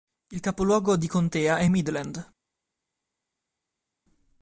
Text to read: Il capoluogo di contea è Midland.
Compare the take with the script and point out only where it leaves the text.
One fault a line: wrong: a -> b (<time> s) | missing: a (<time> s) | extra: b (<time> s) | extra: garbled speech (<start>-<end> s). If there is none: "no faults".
no faults